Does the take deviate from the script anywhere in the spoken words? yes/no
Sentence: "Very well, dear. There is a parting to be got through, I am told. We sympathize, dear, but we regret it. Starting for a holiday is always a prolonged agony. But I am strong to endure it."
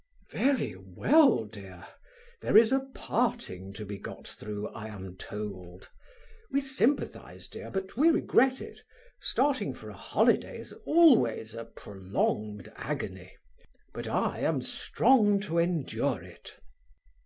no